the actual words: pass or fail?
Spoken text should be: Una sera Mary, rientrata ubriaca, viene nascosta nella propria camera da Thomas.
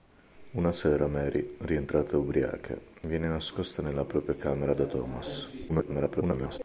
fail